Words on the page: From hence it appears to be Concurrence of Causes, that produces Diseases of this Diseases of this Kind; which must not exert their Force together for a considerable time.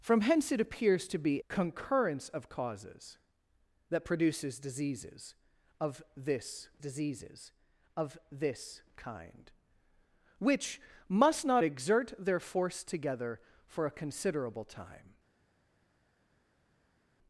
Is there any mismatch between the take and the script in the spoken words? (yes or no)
no